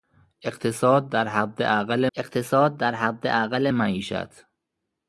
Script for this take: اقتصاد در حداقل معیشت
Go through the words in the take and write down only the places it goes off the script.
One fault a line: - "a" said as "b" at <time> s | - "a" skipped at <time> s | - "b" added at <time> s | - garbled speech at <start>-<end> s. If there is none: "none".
- "اقتصاد در حداقل" added at 2.2 s